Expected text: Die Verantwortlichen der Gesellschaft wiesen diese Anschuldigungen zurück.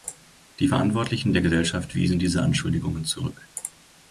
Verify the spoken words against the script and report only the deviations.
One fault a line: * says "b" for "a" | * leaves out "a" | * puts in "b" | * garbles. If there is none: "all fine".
all fine